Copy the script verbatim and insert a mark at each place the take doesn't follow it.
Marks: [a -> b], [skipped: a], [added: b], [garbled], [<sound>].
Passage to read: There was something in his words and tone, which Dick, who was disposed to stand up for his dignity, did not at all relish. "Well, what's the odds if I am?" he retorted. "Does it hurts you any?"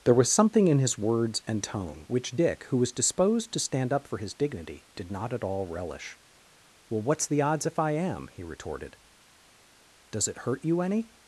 There was something in his words and tone, which Dick, who was disposed to stand up for his dignity, did not at all relish. "Well, what's the odds if I am?" he retorted. "Does it [hurts -> hurt] you any?"